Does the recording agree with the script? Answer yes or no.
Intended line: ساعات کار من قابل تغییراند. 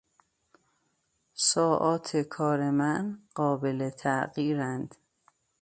yes